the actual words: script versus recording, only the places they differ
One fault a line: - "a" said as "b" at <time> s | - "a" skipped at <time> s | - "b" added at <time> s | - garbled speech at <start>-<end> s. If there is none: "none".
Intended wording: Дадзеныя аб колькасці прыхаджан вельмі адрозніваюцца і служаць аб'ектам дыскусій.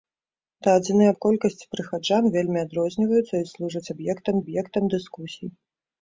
- "аб'ектам" added at 4.4 s